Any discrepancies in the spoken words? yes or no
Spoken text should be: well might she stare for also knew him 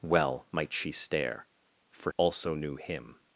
no